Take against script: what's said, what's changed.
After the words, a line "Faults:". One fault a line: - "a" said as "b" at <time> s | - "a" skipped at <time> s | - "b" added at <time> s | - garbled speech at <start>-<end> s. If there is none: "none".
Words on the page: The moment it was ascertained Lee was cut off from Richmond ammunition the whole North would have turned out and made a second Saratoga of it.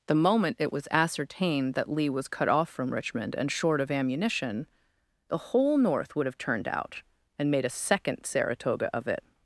The moment it was ascertained that Lee was cut off from Richmond and short of ammunition the whole North would have turned out and made a second Saratoga of it.
Faults:
- "that" added at 1.7 s
- "and short of" added at 3.4 s